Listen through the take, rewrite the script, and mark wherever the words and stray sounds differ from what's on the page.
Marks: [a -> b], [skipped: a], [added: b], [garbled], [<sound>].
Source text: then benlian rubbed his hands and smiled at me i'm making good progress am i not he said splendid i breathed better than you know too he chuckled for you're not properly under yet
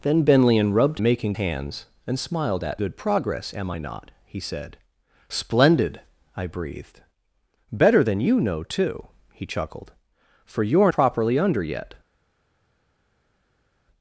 then benlian rubbed [his -> making] hands and smiled at [skipped: me i'm making] good progress am i not he said splendid i breathed better than you know too he chuckled for you're [skipped: not] properly under yet